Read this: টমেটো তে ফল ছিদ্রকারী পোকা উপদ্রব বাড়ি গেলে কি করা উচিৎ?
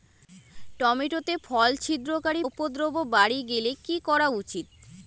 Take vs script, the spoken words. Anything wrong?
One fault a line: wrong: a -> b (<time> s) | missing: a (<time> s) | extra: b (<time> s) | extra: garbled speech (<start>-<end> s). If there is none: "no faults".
missing: পোকা (2.4 s)